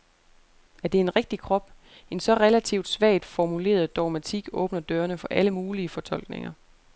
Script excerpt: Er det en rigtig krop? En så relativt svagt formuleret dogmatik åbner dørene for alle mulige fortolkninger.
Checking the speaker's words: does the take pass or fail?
pass